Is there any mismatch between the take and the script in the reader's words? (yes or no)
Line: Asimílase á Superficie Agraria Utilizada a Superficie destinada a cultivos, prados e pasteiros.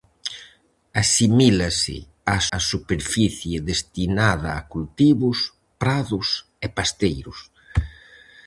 yes